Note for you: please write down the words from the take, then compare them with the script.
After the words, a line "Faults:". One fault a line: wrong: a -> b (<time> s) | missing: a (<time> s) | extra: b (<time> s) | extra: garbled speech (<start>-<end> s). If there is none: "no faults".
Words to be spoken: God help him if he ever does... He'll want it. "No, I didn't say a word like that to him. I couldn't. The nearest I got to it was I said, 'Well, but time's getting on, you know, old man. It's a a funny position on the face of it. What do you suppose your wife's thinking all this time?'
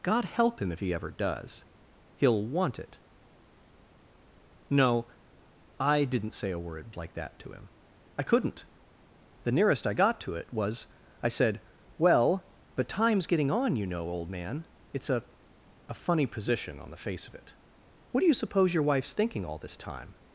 God help him if he ever does... He'll want it. "No, I didn't say a word like that to him. I couldn't. The nearest I got to it was I said, 'Well, but time's getting on, you know, old man. It's a a funny position on the face of it. What do you suppose your wife's thinking all this time?'
Faults:
no faults